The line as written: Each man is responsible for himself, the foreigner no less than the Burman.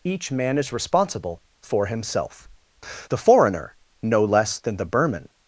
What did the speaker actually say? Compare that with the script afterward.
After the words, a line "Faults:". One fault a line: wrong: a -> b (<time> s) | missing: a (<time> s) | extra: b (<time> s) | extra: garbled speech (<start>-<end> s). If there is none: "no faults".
Each man is responsible for himself, the foreigner no less than the Burman.
Faults:
no faults